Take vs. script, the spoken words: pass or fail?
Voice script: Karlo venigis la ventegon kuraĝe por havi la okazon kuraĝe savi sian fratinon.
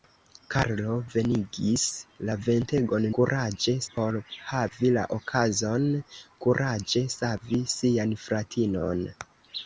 pass